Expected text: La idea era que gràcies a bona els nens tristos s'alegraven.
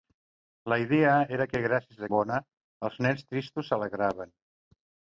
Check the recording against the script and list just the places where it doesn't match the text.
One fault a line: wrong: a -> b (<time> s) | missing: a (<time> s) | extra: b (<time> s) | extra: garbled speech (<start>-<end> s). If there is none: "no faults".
no faults